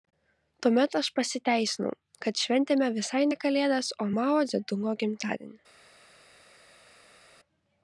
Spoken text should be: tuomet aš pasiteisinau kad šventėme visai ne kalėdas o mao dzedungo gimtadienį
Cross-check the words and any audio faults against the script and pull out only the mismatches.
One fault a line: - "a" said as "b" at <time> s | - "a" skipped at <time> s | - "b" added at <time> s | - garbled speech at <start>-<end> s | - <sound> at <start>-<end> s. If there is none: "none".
none